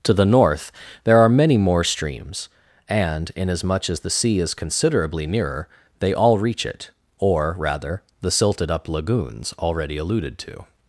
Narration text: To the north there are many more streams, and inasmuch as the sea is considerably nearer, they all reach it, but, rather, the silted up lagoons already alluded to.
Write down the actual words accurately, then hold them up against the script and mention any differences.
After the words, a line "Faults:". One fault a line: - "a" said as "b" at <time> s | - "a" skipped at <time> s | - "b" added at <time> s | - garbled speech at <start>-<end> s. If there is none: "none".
To the north there are many more streams, and inasmuch as the sea is considerably nearer, they all reach it, or, rather, the silted up lagoons already alluded to.
Faults:
- "but" said as "or" at 7.2 s